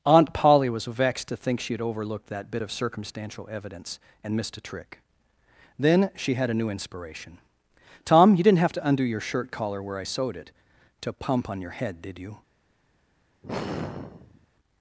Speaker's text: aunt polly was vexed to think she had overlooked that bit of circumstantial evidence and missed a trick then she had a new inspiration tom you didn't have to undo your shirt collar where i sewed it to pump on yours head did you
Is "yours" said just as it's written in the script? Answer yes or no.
no